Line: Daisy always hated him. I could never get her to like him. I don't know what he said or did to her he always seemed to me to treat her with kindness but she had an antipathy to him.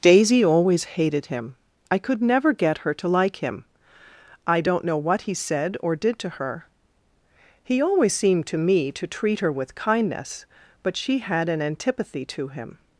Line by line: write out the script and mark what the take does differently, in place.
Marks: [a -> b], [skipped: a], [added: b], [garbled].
Daisy always hated him. I could never get her to like him. I don't know what he said or did to her he always seemed to me to treat her with kindness but she had an antipathy to him.